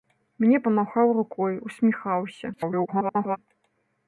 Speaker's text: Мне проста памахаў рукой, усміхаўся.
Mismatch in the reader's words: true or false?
true